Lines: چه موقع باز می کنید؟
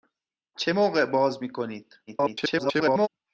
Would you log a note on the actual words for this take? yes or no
yes